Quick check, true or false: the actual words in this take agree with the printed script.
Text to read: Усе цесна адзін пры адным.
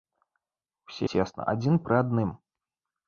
true